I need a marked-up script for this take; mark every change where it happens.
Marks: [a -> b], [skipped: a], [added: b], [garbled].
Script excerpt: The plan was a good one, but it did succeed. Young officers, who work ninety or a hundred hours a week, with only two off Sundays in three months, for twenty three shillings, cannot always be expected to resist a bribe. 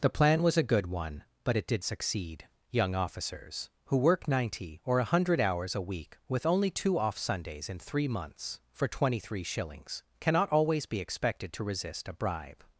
The plan was a good one, but it did succeed. Young officers, who work ninety or a hundred hours a week, with only two off Sundays in three months, for twenty three shillings, cannot always be expected to resist a bribe.